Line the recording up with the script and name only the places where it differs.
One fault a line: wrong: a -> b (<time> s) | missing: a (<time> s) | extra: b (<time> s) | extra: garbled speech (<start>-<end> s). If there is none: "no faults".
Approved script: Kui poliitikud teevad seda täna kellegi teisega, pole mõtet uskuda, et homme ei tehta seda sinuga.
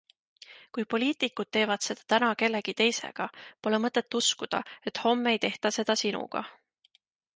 no faults